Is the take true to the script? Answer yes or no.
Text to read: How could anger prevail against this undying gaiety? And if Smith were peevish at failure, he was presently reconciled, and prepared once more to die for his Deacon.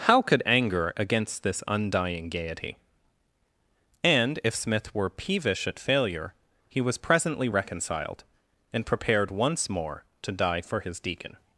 no